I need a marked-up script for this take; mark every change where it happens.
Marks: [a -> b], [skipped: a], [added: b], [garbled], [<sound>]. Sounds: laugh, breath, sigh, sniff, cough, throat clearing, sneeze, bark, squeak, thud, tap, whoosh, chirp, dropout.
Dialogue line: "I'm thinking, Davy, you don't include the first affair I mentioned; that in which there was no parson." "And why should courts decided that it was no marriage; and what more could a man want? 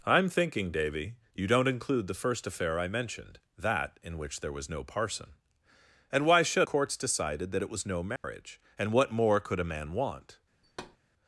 "I'm thinking, Davy, you don't include the first affair I mentioned; that in which there was no parson." "And why should courts decided that it was no marriage; [dropout] and what more could a man want? [thud]